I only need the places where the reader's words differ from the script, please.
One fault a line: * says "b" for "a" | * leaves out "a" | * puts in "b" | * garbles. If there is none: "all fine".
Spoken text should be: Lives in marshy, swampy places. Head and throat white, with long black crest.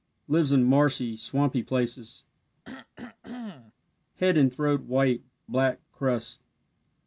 * leaves out "with long"